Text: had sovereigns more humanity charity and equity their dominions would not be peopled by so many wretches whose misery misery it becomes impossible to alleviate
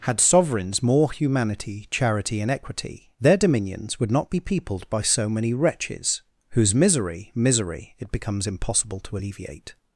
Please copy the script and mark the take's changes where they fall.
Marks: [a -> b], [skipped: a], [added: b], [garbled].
had sovereigns more humanity charity and equity their dominions would not be peopled by so many wretches whose misery misery it becomes impossible to alleviate